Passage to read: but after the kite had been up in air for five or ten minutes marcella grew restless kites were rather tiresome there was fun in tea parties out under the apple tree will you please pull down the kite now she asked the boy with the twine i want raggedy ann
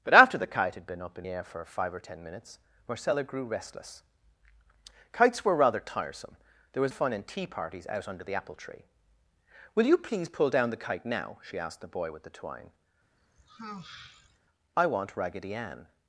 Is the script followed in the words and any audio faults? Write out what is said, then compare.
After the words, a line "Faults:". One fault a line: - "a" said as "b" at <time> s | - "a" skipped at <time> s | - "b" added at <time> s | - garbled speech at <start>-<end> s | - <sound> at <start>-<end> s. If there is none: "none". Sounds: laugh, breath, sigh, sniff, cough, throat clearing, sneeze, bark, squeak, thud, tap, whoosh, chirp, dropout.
but after the kite had been up in air for five or ten minutes marcella grew restless kites were rather tiresome there was fun in tea parties out under the apple tree will you please pull down the kite now she asked the boy with the twine i want raggedy ann
Faults:
- sigh at 13.2-14.4 s